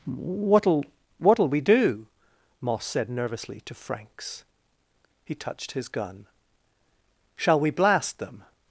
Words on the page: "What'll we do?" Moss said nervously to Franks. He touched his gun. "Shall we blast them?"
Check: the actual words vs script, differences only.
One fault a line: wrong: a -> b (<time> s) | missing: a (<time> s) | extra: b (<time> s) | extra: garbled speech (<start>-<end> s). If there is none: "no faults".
extra: what'll (1.2 s)